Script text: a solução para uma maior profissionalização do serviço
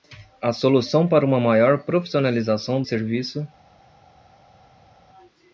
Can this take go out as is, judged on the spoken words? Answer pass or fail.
fail